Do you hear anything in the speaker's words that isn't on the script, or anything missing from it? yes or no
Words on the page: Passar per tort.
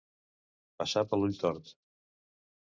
yes